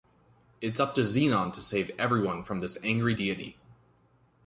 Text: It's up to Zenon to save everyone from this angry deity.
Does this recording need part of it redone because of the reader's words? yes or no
no